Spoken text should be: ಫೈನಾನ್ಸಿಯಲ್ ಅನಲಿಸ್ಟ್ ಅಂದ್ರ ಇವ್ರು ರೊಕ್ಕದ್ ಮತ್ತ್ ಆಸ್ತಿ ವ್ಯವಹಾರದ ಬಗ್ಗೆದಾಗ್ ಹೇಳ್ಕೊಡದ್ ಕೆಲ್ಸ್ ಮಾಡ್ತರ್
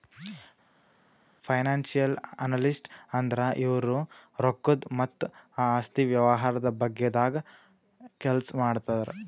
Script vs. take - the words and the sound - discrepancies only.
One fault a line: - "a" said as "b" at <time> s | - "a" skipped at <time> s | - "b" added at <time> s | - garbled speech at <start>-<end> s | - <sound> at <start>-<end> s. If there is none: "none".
- "ಹೇಳ್ಕೊಡದ್" skipped at 7.4 s